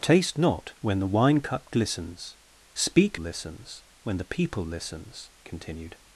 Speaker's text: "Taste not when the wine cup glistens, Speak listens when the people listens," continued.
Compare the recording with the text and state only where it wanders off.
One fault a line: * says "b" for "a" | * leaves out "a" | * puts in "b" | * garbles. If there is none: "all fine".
all fine